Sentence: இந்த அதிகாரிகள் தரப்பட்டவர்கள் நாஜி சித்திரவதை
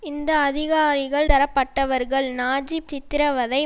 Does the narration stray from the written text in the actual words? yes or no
no